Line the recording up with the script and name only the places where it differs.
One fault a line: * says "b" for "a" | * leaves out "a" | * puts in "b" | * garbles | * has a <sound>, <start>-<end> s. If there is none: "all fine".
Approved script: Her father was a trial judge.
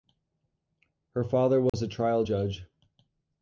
* has a dropout, 1.7-1.7 s